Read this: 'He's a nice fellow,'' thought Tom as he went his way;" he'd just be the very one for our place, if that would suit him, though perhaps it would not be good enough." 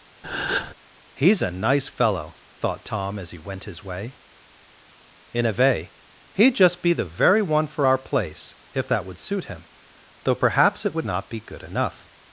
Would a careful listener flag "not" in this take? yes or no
no